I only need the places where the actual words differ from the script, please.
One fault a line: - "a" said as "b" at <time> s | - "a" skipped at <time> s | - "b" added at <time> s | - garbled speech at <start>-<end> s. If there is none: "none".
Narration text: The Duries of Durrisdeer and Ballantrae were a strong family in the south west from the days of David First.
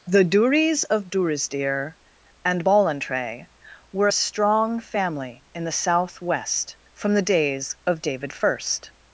none